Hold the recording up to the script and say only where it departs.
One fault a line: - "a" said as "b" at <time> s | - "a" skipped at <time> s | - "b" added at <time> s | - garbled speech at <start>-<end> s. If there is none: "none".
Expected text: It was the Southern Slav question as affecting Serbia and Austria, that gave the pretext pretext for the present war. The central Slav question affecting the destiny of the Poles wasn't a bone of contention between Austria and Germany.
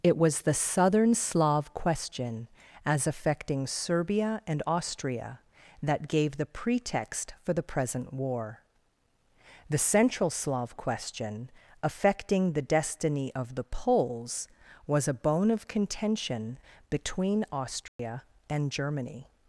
- "pretext" skipped at 7.3 s
- "wasn't" said as "was" at 14.9 s